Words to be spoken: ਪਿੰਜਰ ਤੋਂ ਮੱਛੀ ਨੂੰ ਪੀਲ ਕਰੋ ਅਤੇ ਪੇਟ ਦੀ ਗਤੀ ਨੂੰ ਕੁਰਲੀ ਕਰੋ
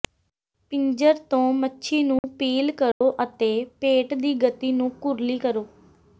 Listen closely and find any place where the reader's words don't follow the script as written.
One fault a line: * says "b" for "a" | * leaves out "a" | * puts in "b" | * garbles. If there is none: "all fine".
all fine